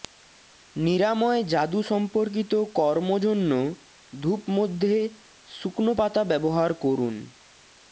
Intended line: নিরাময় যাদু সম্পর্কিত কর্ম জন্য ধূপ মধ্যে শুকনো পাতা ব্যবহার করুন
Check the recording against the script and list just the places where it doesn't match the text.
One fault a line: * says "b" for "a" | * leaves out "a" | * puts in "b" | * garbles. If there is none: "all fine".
all fine